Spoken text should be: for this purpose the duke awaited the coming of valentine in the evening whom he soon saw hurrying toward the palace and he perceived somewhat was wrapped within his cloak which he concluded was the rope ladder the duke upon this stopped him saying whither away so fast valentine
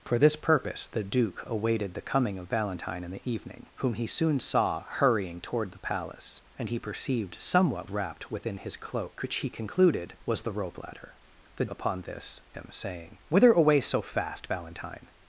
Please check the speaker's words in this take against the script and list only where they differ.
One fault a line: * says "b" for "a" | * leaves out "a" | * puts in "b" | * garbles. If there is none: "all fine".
* leaves out "was"
* leaves out "duke"
* leaves out "stopped"